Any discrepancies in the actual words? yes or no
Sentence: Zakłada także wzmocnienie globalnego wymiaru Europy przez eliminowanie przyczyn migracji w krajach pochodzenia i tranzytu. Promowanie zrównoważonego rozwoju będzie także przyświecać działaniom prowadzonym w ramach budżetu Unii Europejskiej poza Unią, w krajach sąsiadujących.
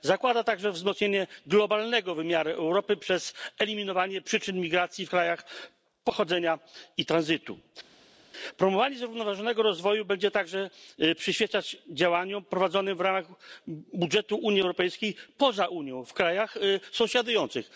no